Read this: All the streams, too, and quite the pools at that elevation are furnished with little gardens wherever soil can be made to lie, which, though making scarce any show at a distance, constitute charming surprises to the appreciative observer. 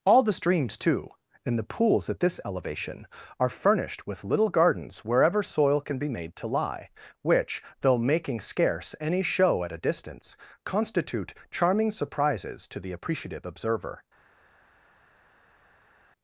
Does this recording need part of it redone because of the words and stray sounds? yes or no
yes